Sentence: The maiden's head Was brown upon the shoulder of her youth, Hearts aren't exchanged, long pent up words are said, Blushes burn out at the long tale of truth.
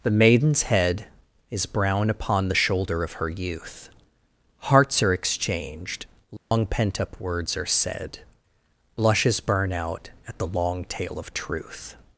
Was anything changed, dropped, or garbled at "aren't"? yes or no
yes